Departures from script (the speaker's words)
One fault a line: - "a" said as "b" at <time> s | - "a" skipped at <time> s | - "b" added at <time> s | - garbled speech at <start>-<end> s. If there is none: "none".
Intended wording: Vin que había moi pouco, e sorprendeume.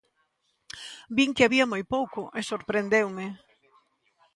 none